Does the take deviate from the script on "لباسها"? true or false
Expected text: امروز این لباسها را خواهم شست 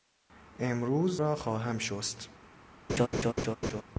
true